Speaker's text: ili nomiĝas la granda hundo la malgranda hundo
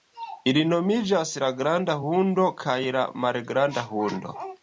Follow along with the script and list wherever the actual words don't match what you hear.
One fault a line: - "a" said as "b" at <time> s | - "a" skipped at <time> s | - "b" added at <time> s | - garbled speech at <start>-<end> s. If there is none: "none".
- "kaj" added at 2.6 s